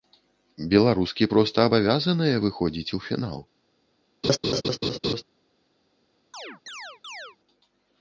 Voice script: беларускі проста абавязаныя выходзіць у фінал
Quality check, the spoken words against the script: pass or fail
pass